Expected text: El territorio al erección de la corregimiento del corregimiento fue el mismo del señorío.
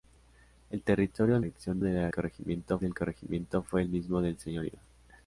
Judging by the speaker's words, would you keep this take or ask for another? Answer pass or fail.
pass